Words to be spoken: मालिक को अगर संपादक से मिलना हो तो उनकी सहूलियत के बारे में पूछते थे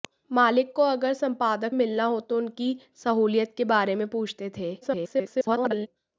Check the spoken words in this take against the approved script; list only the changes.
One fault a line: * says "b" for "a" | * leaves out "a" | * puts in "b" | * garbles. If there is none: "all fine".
* leaves out "से"
* garbles